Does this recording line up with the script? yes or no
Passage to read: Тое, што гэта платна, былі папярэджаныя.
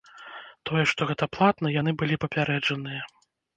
no